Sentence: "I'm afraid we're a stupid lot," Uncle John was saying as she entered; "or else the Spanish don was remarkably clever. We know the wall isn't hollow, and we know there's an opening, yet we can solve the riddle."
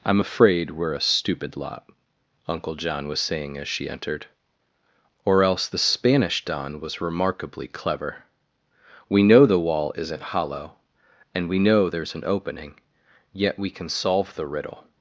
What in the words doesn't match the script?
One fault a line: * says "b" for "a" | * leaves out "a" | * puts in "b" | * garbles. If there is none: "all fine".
all fine